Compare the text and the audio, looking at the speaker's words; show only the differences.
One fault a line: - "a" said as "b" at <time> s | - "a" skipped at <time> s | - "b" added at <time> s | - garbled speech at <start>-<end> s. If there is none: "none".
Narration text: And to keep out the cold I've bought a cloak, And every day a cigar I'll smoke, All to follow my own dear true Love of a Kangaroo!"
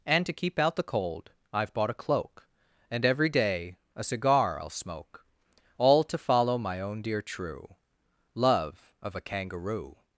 none